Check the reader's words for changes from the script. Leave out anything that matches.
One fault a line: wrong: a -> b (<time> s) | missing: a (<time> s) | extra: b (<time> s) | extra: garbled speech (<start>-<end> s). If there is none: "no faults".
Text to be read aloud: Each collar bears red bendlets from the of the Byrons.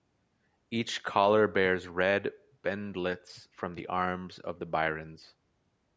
extra: arms (3.9 s)